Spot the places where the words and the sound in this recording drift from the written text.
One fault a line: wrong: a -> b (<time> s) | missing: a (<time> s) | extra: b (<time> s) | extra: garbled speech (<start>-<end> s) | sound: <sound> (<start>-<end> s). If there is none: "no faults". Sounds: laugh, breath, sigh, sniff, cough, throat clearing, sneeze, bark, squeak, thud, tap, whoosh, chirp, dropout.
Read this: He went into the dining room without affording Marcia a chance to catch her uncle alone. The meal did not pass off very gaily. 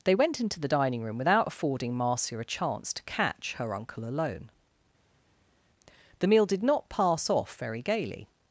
wrong: He -> They (0.0 s)